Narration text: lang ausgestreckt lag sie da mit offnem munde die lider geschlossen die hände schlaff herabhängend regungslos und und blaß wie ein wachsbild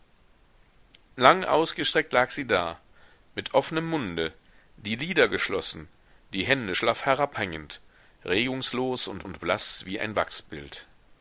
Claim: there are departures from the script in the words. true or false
false